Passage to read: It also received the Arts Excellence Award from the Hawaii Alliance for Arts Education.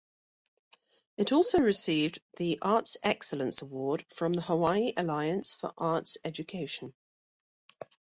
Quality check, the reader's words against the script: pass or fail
pass